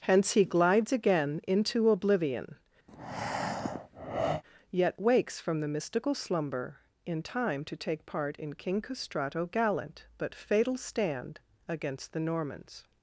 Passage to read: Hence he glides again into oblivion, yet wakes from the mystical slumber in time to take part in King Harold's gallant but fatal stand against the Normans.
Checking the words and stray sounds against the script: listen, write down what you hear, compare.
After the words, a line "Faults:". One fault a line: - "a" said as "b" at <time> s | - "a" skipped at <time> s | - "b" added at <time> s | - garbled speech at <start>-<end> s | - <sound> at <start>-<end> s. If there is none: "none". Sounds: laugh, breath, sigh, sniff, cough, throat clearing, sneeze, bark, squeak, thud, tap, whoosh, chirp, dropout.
Hence he glides again into oblivion, yet wakes from the mystical slumber in time to take part in King Castrato gallant but fatal stand against the Normans.
Faults:
- breath at 2.9-4.4 s
- "Harold's" said as "Castrato" at 8.8 s